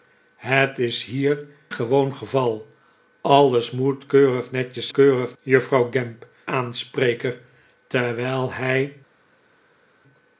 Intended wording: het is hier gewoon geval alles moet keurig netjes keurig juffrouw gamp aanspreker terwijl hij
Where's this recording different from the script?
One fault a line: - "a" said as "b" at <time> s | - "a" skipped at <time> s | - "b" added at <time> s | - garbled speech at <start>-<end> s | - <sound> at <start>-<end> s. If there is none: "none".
none